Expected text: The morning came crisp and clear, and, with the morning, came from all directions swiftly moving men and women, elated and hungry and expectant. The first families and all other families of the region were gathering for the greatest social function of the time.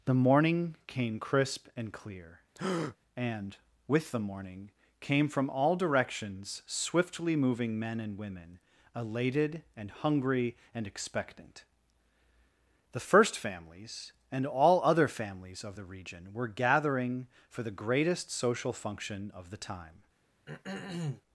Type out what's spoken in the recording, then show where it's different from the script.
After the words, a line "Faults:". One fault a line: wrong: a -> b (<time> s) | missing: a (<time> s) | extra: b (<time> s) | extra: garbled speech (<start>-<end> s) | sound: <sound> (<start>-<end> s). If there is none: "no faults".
The morning came crisp and clear, and, with the morning, came from all directions swiftly moving men and women, elated and hungry and expectant. The first families and all other families of the region were gathering for the greatest social function of the time.
Faults:
sound: breath (2.5-3.0 s)
sound: throat clearing (20.5-21.2 s)